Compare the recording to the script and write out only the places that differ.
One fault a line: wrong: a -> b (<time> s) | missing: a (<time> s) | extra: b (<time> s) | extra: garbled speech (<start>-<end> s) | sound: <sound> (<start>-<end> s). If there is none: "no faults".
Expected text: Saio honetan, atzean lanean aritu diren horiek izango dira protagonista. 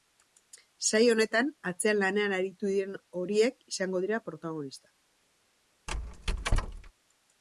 sound: squeak (5.9-6.9 s)